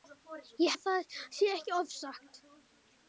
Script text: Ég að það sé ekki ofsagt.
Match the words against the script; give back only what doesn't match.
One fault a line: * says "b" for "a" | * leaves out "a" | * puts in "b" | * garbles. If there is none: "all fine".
all fine